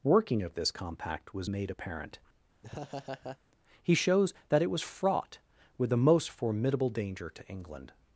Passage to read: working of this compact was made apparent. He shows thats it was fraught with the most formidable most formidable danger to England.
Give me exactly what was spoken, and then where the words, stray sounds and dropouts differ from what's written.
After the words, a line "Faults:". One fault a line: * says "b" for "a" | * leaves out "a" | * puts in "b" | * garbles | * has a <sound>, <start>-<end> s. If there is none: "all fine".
working of this compact was made apparent. He shows that it was fraught with the most formidable danger to England.
Faults:
* has a laugh, 2.6-3.4 s
* says "that" for "thats"
* leaves out "most formidable"